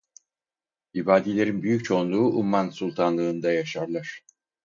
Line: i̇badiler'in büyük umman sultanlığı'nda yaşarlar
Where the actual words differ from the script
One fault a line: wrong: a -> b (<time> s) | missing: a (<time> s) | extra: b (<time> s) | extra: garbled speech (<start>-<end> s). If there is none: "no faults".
extra: çoğunluğu (1.8 s)